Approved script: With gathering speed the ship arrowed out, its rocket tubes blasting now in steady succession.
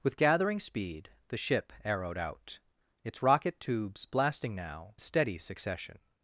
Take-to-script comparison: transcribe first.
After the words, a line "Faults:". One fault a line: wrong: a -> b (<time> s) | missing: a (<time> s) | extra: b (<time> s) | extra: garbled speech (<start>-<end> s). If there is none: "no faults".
With gathering speed the ship arrowed out, its rocket tubes blasting now steady succession.
Faults:
missing: in (5.0 s)